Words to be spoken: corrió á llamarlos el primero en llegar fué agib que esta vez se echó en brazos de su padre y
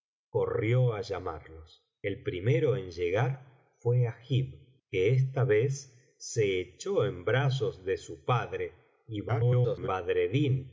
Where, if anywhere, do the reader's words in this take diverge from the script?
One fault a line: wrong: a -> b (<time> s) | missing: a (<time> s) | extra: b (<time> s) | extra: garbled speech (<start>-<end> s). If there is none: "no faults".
extra: garbled speech (9.3-9.9 s)